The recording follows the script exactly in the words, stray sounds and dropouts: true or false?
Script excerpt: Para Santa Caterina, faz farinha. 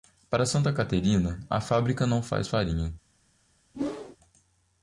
false